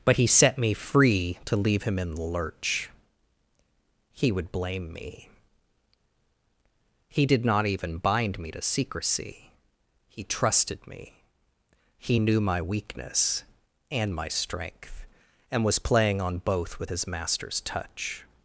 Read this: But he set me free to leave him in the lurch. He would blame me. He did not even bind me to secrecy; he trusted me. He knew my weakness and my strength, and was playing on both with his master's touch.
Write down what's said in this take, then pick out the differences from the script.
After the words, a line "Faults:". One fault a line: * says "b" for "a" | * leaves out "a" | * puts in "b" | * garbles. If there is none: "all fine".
But he set me free to leave him in the lurch. He would blame me. He did not even bind me to secrecy; he trusted me. He knew my weakness and my strength, and was playing on both with his master's touch.
Faults:
all fine